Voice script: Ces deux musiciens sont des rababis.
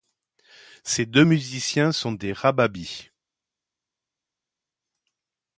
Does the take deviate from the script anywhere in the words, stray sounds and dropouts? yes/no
no